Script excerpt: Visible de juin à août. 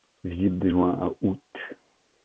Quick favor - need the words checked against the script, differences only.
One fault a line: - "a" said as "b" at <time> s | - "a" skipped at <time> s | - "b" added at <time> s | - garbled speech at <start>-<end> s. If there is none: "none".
none